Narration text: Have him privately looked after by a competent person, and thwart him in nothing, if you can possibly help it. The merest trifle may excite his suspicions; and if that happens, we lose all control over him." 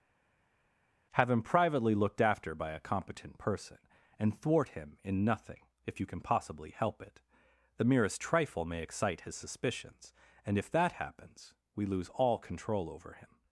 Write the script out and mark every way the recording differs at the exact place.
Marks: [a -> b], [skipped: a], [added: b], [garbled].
Have him privately looked after by a competent person, and thwart him in nothing, if you can possibly help it. The merest trifle may excite his suspicions; and if that happens, we lose all control over him."